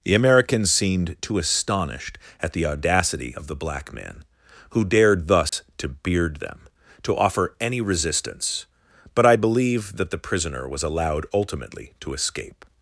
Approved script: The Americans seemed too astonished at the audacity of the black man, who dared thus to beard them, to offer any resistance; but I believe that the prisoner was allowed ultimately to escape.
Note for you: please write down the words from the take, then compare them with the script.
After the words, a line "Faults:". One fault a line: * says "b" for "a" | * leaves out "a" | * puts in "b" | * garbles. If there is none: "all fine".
The Americans seemed too astonished at the audacity of the black man, who dared thus to beard them, to offer any resistance; but I believe that the prisoner was allowed ultimately to escape.
Faults:
all fine